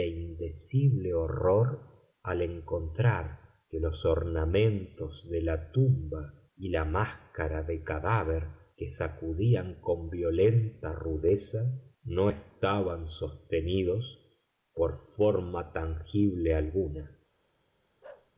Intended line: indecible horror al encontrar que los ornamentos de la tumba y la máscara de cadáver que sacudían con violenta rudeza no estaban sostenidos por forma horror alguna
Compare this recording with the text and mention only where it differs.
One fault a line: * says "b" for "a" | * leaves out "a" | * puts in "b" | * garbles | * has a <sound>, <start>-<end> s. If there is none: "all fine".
* says "tangible" for "horror"
* has a bark, 18.0-18.3 s